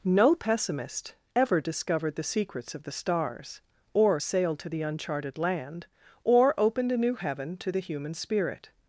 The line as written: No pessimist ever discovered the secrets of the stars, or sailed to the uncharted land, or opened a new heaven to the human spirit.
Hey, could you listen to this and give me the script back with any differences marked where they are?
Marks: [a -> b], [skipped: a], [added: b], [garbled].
No pessimist ever discovered the secrets of the stars, or sailed to the uncharted land, or opened a new heaven to the human spirit.